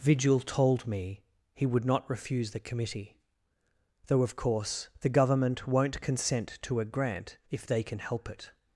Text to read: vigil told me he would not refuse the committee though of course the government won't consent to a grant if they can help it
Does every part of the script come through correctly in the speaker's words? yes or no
yes